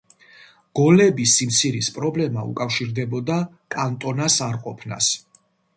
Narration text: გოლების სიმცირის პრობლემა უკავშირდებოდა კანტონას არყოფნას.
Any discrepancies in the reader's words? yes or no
no